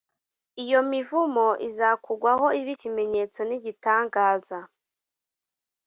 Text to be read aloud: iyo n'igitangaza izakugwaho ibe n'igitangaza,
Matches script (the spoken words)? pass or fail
fail